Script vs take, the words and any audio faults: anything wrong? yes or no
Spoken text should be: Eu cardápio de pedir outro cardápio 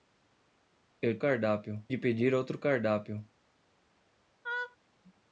yes